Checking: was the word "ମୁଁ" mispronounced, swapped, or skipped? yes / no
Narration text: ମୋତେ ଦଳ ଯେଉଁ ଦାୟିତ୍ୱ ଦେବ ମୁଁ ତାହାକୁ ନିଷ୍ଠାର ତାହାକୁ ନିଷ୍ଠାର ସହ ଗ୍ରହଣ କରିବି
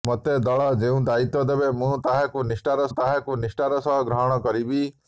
no